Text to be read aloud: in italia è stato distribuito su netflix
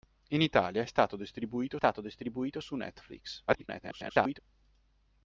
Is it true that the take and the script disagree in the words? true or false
true